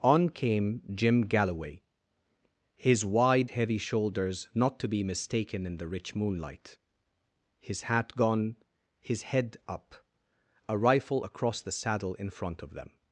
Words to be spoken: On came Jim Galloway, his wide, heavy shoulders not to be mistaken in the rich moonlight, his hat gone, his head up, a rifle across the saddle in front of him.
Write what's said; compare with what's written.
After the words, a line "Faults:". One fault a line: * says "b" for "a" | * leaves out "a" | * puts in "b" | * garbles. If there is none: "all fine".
On came Jim Galloway, his wide, heavy shoulders not to be mistaken in the rich moonlight, his hat gone, his head up, a rifle across the saddle in front of them.
Faults:
* says "them" for "him"